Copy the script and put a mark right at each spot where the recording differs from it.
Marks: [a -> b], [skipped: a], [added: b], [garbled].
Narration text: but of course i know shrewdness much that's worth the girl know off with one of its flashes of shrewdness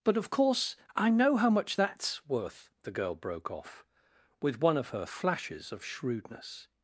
but of course i know [shrewdness -> how] much that's worth the girl [know -> broke] off with one of [its -> her] flashes of shrewdness